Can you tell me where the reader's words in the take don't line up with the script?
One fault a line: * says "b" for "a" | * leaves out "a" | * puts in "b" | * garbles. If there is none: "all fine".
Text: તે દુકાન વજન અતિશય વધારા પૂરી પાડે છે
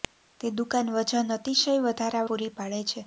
all fine